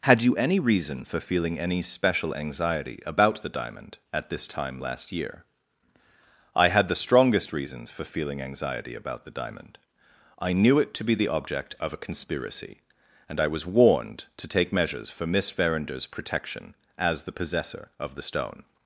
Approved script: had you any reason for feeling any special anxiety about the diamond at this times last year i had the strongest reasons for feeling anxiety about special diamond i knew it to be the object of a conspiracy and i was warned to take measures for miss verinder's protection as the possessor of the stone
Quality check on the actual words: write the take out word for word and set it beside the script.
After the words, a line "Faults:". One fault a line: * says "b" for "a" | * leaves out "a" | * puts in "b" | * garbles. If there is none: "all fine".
had you any reason for feeling any special anxiety about the diamond at this time last year i had the strongest reasons for feeling anxiety about the diamond i knew it to be the object of a conspiracy and i was warned to take measures for miss verinder's protection as the possessor of the stone
Faults:
* says "time" for "times"
* says "the" for "special"